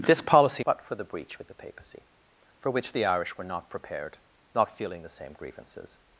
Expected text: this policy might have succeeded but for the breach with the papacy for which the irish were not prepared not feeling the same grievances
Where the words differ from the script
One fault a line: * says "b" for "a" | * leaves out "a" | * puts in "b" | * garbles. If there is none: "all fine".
* leaves out "might have succeeded"